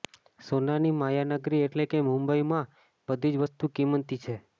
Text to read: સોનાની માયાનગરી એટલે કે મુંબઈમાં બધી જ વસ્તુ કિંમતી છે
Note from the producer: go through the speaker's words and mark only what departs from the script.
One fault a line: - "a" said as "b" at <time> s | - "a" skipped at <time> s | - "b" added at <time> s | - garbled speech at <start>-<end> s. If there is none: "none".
none